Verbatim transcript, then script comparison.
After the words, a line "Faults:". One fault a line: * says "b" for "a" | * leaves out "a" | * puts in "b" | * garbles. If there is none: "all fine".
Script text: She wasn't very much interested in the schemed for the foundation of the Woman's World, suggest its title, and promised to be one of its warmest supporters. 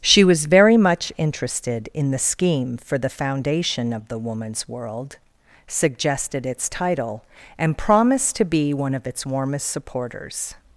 She was very much interested in the scheme for the foundation of the Woman's World, suggested its title, and promised to be one of its warmest supporters.
Faults:
* says "was" for "wasn't"
* says "scheme" for "schemed"
* says "suggested" for "suggest"